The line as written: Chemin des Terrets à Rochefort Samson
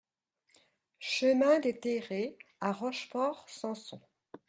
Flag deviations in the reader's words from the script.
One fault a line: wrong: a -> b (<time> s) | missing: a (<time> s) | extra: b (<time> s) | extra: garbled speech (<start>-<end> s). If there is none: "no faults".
no faults